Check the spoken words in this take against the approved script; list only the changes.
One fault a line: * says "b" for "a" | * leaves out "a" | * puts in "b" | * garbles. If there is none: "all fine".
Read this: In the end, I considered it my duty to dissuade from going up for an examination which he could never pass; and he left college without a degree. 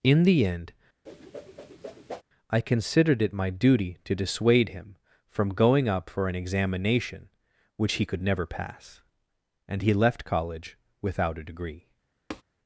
* puts in "him"